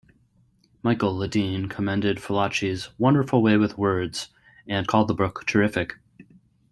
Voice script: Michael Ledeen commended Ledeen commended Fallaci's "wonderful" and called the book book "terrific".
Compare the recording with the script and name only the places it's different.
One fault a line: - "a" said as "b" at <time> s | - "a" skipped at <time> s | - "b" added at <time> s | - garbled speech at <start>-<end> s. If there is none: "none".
- "Ledeen commended Fallaci's wonderful" said as "Fallaci's wonderful way with words" at 2.2 s
- "book" skipped at 5.4 s